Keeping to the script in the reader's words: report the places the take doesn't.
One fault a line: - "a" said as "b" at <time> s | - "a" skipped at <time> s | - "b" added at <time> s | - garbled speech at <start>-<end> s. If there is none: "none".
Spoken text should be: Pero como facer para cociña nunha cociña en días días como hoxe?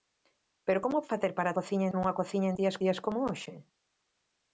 none